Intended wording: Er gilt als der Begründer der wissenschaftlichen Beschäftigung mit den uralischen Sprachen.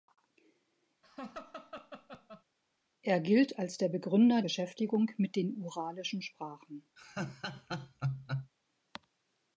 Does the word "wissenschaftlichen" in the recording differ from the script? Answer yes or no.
yes